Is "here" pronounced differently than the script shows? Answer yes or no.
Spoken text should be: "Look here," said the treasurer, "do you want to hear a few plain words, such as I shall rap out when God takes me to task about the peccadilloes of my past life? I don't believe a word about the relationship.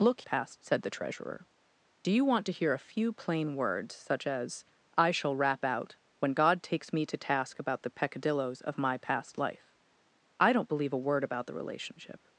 yes